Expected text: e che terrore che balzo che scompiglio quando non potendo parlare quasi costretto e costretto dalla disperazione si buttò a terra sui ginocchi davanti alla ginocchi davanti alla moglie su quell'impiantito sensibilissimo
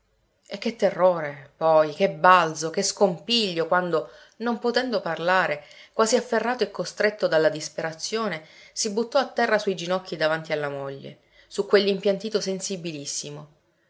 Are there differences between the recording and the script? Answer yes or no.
yes